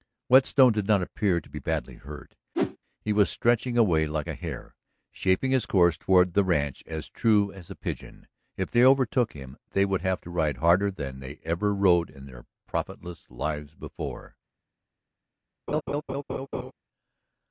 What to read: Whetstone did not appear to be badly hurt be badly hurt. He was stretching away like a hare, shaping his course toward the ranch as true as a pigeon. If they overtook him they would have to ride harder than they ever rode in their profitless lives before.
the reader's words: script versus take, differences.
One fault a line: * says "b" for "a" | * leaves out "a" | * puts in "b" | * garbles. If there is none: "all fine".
* leaves out "be badly hurt"